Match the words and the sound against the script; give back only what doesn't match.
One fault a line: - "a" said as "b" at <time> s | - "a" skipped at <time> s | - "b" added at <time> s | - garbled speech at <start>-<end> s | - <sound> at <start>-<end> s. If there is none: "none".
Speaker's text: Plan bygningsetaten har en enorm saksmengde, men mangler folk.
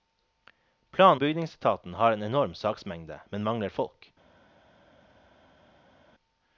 none